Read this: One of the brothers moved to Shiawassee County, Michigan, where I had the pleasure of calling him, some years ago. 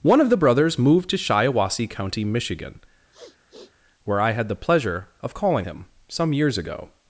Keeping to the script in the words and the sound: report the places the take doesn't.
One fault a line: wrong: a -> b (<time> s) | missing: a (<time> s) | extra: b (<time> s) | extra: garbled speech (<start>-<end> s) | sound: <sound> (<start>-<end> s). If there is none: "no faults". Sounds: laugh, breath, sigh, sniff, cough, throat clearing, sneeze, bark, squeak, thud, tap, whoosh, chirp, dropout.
sound: sniff (3.1-3.7 s)